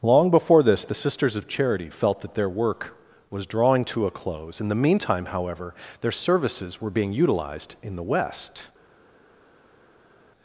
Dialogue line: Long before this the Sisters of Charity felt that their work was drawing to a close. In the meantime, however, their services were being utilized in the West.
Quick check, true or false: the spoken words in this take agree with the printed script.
true